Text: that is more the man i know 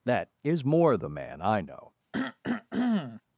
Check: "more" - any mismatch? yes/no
no